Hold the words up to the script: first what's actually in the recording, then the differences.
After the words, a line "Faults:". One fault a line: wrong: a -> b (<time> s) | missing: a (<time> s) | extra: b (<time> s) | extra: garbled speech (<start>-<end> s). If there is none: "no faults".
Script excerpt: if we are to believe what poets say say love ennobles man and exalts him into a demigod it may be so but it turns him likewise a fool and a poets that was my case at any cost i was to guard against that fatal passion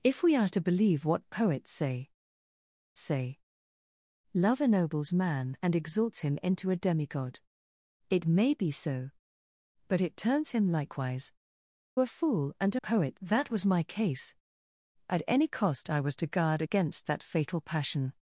if we are to believe what poets say say love ennobles man and exalts him into a demigod it may be so but it turns him likewise a fool and a poets that was my case at any cost i was to guard against that fatal passion
Faults:
no faults